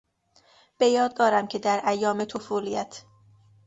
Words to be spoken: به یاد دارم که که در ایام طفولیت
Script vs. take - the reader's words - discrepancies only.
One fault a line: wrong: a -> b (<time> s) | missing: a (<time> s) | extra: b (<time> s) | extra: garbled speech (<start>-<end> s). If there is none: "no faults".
missing: که (1.6 s)